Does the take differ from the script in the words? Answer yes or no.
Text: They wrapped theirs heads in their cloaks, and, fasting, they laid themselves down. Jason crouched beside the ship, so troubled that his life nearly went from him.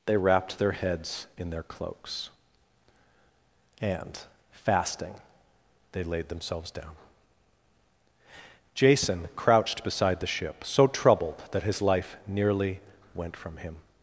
yes